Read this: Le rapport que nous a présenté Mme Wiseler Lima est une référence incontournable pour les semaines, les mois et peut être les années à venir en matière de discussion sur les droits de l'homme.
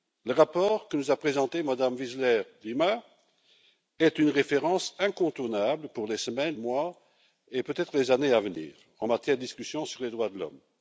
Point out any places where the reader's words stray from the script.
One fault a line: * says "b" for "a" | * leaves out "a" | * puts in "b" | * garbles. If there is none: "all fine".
* leaves out "les"